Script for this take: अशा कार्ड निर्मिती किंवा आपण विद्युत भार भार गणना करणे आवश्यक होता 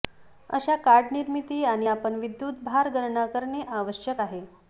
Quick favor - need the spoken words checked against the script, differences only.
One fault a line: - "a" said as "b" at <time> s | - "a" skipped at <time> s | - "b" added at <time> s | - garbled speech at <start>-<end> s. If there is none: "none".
- "किंवा" said as "आणि" at 1.6 s
- "भार" skipped at 2.9 s
- "होता" said as "आहे" at 4.2 s